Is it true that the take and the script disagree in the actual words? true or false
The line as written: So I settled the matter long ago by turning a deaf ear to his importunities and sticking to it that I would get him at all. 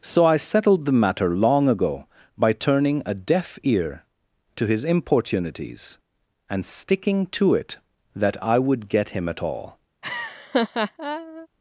false